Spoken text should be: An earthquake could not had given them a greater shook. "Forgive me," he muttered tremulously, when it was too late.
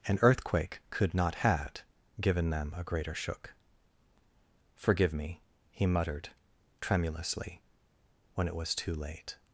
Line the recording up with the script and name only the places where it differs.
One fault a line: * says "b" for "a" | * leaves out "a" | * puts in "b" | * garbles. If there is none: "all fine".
all fine